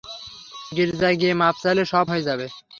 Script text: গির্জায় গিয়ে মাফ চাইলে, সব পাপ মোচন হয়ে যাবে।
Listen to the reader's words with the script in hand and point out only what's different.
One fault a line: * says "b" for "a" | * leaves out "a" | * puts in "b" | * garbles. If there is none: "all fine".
* leaves out "পাপ মোচন"